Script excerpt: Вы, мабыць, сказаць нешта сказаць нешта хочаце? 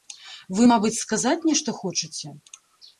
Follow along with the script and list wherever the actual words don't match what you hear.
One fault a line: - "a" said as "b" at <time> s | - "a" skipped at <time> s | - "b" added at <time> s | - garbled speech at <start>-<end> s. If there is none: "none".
- "сказаць нешта" skipped at 1.8 s